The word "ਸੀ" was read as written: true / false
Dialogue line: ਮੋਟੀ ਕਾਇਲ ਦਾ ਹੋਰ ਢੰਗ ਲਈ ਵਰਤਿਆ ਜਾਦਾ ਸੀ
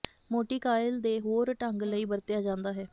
false